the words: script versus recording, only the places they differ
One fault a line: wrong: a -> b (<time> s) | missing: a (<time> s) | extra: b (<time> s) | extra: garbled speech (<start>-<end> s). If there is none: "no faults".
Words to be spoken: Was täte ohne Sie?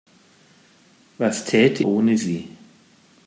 no faults